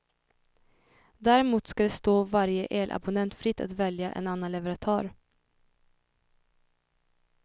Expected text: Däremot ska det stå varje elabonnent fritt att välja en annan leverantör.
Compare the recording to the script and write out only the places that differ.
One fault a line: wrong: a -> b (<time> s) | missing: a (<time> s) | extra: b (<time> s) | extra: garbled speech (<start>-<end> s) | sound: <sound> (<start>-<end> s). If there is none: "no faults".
no faults